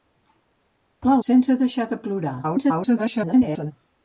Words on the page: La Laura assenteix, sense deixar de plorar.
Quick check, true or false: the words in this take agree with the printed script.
false